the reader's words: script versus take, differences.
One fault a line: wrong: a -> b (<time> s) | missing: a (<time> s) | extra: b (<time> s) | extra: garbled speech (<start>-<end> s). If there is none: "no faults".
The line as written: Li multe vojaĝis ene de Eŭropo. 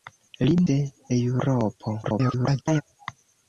missing: multe vojaĝis ene (0.5 s)
extra: garbled speech (2.0-2.8 s)